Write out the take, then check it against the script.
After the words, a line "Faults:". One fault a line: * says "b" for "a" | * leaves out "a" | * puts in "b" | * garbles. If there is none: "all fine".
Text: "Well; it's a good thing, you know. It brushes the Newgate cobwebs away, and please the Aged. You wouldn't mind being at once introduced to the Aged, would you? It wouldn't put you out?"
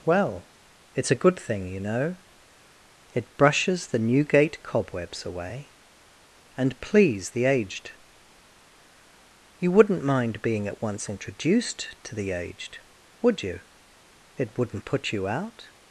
"Well; it's a good thing, you know. It brushes the Newgate cobwebs away, and please the Aged. You wouldn't mind being at once introduced to the Aged, would you? It wouldn't put you out?"
Faults:
all fine